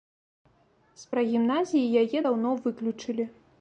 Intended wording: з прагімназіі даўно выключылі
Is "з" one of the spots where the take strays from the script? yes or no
no